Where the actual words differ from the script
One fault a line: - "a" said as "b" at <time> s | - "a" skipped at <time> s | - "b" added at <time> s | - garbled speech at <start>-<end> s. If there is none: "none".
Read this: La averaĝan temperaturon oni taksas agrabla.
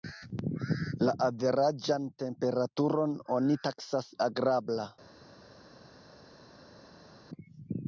none